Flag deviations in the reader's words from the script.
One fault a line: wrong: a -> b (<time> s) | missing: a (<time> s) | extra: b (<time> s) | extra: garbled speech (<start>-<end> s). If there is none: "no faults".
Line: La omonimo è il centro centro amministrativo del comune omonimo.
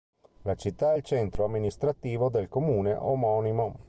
wrong: omonimo -> città (0.6 s)
missing: centro (1.4 s)